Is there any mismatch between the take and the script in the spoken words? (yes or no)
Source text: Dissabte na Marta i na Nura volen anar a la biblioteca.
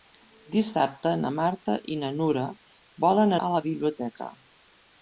yes